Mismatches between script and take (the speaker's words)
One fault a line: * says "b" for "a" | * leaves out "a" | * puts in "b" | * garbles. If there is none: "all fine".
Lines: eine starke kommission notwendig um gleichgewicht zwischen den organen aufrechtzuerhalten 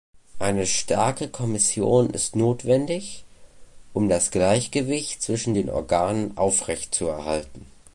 * puts in "ist"
* puts in "das"